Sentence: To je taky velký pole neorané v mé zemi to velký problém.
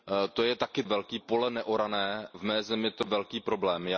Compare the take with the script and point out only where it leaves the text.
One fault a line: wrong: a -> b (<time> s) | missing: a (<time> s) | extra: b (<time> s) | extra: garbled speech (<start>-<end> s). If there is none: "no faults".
no faults